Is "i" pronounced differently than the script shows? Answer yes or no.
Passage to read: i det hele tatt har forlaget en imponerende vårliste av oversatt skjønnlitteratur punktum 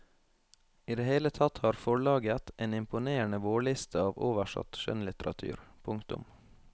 no